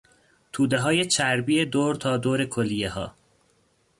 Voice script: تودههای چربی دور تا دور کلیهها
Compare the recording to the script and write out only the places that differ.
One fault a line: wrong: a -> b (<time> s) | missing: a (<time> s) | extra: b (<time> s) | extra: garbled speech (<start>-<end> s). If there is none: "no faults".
no faults